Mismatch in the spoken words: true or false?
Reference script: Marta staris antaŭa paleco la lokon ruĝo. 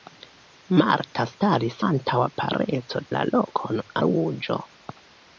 false